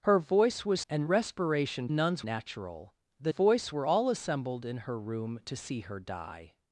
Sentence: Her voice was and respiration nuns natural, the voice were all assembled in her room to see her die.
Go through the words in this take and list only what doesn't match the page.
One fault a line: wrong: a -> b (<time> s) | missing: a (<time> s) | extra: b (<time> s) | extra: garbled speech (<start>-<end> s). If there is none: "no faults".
no faults